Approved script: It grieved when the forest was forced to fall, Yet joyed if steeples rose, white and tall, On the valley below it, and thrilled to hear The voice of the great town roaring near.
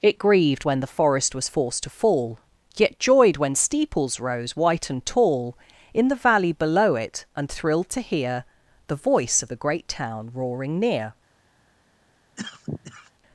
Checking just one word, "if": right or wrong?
wrong